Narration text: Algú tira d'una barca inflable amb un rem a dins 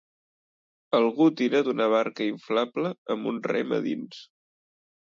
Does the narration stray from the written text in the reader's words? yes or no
no